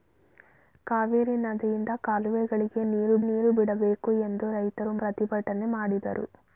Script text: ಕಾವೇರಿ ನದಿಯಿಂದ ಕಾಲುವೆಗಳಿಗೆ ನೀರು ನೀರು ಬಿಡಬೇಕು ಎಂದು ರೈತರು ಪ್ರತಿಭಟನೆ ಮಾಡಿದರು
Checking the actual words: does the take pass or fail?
pass